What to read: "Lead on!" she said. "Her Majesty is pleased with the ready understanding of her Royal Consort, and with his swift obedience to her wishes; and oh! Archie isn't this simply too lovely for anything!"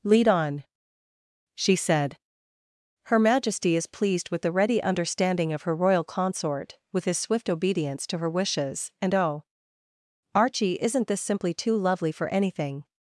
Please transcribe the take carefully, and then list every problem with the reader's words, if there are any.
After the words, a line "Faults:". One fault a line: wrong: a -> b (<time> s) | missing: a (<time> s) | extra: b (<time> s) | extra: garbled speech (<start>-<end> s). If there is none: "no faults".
"Lead on!" she said. "Her Majesty is pleased with the ready understanding of her Royal Consort, with his swift obedience to her wishes; and oh! Archie isn't this simply too lovely for anything!"
Faults:
missing: and (6.8 s)